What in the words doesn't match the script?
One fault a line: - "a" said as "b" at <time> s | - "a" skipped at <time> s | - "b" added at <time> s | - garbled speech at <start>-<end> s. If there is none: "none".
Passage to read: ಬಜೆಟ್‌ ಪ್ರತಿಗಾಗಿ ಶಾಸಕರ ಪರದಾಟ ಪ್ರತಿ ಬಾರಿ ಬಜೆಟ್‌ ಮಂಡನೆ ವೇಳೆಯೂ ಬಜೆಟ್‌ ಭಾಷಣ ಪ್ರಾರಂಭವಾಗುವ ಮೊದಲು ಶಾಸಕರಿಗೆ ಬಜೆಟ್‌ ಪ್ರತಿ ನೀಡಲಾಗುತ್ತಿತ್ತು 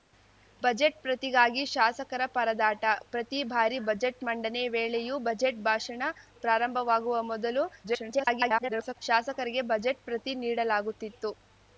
- garbled speech at 7.8-9.0 s